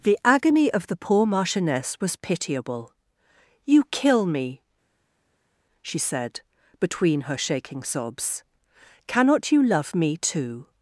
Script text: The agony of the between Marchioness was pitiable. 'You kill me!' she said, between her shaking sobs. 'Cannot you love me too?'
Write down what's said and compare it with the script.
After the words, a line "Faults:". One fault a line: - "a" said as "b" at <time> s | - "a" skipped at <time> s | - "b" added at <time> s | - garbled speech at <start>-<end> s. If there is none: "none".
The agony of the poor Marchioness was pitiable. 'You kill me!' she said, between her shaking sobs. 'Cannot you love me too?'
Faults:
- "between" said as "poor" at 0.9 s